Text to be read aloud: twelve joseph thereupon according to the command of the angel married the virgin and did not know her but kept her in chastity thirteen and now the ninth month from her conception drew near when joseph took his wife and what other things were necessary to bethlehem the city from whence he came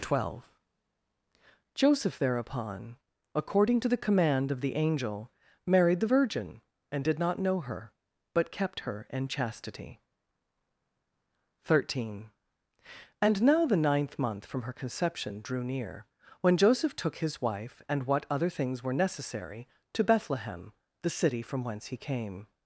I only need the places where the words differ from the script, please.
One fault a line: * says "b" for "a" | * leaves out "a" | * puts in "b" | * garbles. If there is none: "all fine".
all fine